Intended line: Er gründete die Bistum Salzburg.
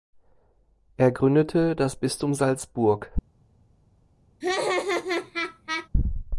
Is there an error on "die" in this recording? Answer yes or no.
yes